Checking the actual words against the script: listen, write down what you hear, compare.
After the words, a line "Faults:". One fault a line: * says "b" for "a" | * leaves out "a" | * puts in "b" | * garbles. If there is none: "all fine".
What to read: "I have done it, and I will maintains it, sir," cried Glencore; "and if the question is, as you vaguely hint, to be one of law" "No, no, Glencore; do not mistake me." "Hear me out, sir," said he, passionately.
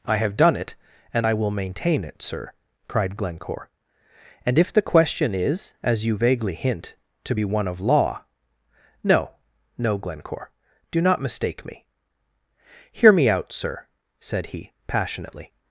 "I have done it, and I will maintain it, sir," cried Glencore; "and if the question is, as you vaguely hint, to be one of law" "No, no, Glencore; do not mistake me." "Hear me out, sir," said he, passionately.
Faults:
* says "maintain" for "maintains"